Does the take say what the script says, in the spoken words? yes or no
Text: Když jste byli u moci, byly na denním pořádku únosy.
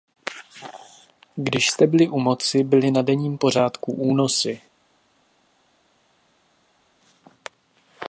yes